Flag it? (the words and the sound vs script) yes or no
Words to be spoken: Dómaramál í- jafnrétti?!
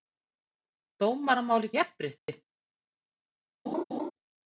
yes